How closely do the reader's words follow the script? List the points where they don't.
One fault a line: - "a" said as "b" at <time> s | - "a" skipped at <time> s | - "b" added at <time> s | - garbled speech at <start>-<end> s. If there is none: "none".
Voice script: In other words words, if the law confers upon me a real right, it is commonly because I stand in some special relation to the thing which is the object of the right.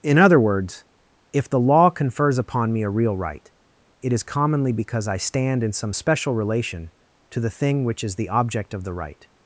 - "words" skipped at 0.8 s